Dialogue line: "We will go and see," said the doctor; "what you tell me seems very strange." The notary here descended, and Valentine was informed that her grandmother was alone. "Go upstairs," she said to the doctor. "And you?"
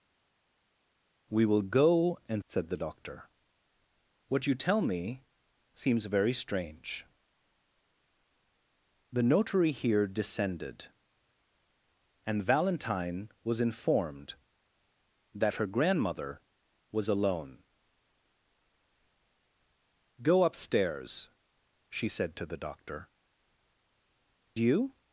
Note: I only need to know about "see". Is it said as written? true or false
false